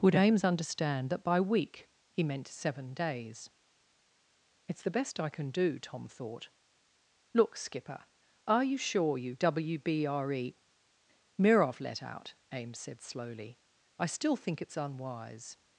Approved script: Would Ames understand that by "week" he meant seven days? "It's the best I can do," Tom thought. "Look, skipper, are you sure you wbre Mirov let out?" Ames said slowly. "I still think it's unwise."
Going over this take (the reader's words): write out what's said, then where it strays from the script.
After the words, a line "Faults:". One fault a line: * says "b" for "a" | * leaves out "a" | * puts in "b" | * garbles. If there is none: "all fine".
Would Ames understand that by "week" he meant seven days? "It's the best I can do," Tom thought. "Look, skipper, are you sure you wbre Mirov let out?" Ames said slowly. "I still think it's unwise."
Faults:
all fine